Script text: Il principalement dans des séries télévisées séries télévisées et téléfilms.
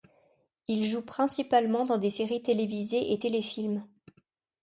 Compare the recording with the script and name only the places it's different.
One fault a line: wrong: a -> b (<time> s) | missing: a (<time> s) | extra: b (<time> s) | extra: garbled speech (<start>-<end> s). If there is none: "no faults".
extra: joue (0.8 s)
missing: séries télévisées (3.1 s)